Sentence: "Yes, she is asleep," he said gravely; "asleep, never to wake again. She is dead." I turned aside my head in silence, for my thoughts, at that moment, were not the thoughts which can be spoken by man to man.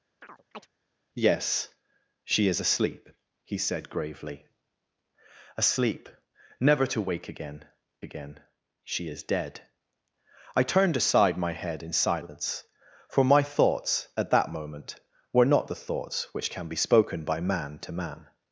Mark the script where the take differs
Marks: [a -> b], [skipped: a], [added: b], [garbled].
"Yes, she is asleep," he said gravely; "asleep, never to wake again. [added: again] She is dead." I turned aside my head in silence, for my thoughts, at that moment, were not the thoughts which can be spoken by man to man.